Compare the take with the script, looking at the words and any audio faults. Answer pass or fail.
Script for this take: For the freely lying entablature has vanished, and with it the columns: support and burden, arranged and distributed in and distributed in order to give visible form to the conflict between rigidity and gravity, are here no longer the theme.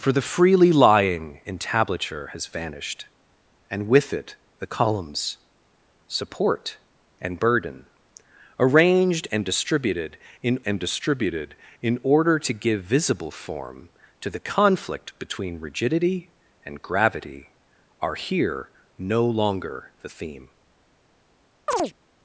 fail